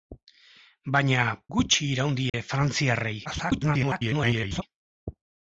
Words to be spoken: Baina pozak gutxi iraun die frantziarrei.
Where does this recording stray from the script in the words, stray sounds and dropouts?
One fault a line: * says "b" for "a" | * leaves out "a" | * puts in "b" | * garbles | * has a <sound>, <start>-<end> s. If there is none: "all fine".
* leaves out "pozak"
* has a dropout, 2.3-2.3 s
* garbles